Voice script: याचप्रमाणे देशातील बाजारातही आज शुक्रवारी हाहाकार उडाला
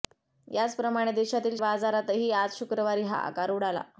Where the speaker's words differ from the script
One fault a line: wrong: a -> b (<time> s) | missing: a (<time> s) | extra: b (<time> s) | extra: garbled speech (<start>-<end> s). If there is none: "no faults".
no faults